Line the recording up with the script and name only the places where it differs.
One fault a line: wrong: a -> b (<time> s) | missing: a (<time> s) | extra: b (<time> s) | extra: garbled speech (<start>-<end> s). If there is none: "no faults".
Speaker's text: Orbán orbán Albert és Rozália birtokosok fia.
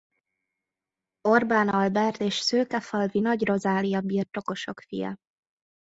missing: orbán (1.7 s)
extra: szőkefalvi Nagy (2.3 s)